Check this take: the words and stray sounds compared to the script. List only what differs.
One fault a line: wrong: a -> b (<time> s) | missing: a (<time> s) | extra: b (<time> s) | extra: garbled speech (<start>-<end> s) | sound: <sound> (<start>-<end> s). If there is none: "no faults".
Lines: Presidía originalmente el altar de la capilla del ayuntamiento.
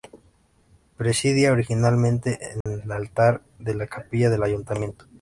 sound: dropout (2.6-2.7 s)